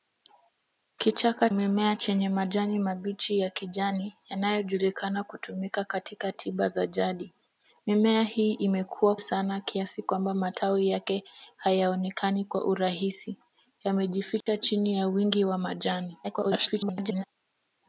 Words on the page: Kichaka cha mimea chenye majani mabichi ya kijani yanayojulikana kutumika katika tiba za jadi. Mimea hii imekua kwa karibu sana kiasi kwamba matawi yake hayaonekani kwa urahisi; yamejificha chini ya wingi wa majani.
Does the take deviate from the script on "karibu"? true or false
true